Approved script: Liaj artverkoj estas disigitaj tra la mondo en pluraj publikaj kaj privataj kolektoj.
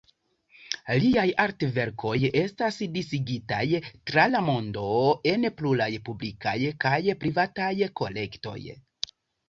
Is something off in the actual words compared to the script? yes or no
no